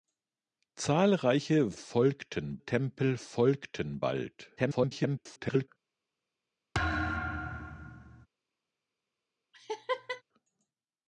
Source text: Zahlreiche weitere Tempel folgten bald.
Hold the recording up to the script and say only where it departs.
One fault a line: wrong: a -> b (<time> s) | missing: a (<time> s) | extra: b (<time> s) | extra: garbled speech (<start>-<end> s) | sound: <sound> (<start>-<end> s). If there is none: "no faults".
wrong: weitere -> folgten (1.8 s)
extra: garbled speech (4.6-5.7 s)
sound: thud (6.7-8.3 s)
sound: laugh (9.5-10.2 s)